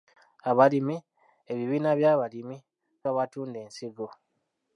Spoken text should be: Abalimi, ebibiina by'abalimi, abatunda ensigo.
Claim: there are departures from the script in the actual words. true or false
false